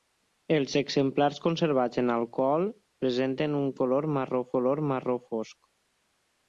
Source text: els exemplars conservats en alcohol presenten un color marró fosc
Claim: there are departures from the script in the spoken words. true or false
true